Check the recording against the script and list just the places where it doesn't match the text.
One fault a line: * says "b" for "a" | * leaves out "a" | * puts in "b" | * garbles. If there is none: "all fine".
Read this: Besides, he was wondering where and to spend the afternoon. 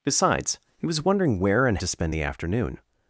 all fine